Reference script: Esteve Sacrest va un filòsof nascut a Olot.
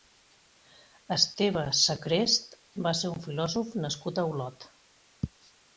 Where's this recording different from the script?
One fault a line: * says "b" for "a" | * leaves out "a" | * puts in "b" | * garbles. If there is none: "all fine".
* puts in "ser"